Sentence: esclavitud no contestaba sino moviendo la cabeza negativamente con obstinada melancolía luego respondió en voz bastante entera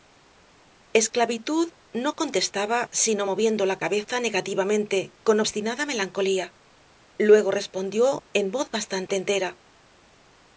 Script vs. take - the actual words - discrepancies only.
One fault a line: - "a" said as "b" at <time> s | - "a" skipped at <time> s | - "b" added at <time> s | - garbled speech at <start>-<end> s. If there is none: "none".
none